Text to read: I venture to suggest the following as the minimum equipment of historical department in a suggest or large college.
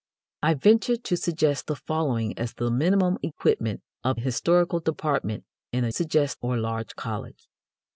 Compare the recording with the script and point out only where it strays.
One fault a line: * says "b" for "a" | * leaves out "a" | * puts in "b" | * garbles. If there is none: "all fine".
all fine